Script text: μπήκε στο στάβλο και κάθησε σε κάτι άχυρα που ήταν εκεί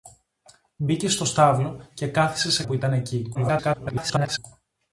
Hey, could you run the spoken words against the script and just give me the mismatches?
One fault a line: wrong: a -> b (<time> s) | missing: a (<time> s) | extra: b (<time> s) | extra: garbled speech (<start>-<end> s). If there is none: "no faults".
missing: κάτι άχυρα (2.6 s)
extra: garbled speech (3.3-4.4 s)